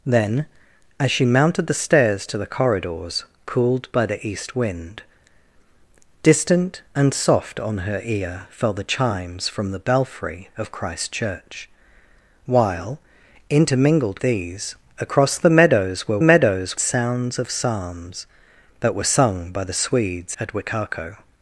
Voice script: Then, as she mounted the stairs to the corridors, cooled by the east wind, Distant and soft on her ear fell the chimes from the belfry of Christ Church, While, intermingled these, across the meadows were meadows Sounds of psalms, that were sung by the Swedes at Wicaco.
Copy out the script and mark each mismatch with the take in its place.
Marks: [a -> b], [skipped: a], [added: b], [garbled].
Then, as she mounted the stairs to the corridors, cooled by the east wind, Distant and soft on her ear fell the chimes from the belfry of Christ Church, While, intermingled these, across the meadows were meadows Sounds of psalms, that were sung by the Swedes at Wicaco.